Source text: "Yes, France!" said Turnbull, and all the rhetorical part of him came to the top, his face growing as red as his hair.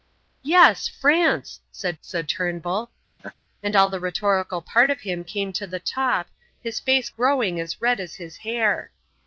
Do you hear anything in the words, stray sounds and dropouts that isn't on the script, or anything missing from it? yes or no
yes